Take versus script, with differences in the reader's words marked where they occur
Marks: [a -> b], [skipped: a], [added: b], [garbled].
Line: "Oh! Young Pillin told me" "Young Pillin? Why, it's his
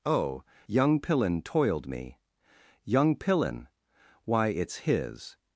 "Oh! Young Pillin [told -> toiled] me" "Young Pillin? Why, it's his